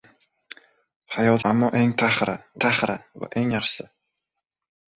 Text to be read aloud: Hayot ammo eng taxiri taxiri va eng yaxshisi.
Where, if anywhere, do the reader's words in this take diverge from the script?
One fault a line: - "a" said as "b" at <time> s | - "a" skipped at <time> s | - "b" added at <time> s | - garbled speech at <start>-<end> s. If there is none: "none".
none